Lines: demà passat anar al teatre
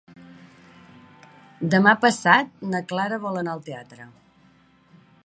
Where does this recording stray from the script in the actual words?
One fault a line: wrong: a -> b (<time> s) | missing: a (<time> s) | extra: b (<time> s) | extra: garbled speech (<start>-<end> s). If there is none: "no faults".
extra: na clara vol (2.7 s)